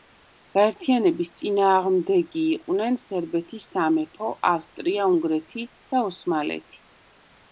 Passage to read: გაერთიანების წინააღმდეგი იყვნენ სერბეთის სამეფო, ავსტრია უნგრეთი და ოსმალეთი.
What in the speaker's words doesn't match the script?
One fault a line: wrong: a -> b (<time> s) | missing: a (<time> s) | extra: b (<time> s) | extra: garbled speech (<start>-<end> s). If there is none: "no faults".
no faults